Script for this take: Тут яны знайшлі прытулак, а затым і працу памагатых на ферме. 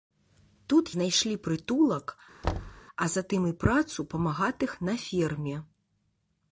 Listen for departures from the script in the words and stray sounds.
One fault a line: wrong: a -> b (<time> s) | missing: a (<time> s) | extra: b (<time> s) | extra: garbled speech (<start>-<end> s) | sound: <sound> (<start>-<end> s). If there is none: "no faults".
missing: яны (0.8 s)
sound: thud (2.4-2.8 s)